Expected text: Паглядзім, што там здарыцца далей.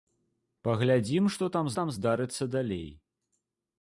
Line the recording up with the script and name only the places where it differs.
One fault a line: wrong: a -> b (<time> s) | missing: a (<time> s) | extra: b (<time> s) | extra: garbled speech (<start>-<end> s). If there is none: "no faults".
extra: там (1.8 s)